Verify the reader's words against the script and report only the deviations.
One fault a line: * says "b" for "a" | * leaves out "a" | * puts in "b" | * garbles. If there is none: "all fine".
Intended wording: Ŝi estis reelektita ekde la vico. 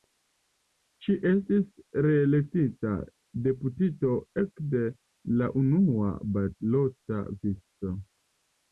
* puts in "deputito"
* puts in "unua balota"